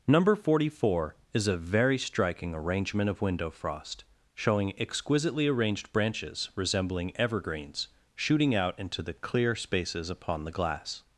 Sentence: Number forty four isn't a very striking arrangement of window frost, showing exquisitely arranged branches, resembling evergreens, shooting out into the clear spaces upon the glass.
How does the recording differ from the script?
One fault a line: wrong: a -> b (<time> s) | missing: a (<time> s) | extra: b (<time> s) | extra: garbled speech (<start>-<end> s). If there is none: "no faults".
wrong: isn't -> is (1.3 s)